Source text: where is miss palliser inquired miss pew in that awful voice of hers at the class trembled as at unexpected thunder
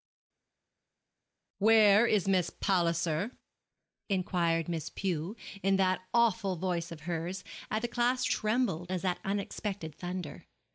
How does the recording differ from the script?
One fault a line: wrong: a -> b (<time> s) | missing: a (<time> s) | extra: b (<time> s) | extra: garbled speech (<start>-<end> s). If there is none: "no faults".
no faults